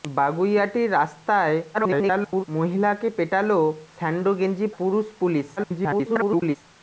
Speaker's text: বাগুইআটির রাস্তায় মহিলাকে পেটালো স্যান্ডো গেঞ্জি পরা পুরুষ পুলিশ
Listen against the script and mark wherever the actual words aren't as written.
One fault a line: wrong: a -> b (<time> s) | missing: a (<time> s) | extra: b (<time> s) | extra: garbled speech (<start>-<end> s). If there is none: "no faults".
extra: garbled speech (1.7-2.4 s)
missing: পরা (4.7 s)
extra: garbled speech (5.6-6.6 s)